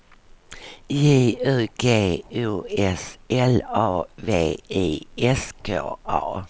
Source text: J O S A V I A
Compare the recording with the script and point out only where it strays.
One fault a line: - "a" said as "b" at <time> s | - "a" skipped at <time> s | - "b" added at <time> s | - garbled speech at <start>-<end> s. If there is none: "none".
- "U G" added at 1.4 s
- "L" added at 3.3 s
- "S K" added at 5.2 s